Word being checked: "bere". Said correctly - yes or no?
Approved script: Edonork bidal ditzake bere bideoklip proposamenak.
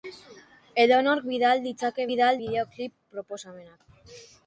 no